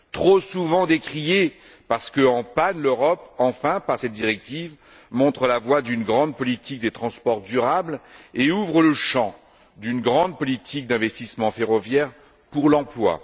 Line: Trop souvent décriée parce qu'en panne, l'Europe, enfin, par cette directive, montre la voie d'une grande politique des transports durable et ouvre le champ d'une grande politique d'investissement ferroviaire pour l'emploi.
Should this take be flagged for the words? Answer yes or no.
no